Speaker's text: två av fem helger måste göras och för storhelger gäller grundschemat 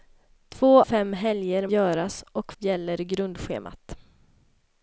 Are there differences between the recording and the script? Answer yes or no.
yes